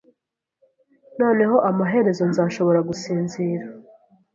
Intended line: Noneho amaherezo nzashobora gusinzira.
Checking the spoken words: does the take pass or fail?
pass